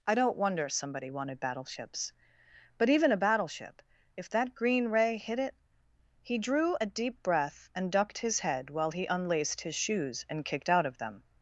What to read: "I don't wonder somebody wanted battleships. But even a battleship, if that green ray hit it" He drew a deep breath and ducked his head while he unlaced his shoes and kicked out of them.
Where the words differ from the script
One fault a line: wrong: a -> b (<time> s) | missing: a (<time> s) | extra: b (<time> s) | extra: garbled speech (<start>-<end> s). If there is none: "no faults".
no faults